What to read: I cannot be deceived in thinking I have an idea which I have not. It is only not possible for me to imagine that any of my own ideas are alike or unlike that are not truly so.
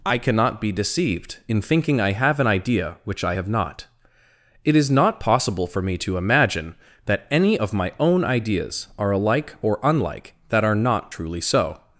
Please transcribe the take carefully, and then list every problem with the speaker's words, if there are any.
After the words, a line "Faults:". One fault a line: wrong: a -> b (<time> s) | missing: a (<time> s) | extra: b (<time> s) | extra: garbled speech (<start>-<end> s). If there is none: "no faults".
I cannot be deceived in thinking I have an idea which I have not. It is not possible for me to imagine that any of my own ideas are alike or unlike that are not truly so.
Faults:
missing: only (4.9 s)